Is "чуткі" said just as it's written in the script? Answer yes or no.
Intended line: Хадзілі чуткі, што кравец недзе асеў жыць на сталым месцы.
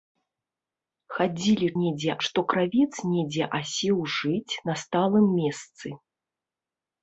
no